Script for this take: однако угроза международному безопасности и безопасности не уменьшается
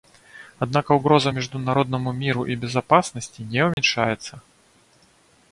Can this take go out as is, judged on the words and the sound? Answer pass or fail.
fail